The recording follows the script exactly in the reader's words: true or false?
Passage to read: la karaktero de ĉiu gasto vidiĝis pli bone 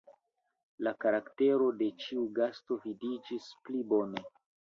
true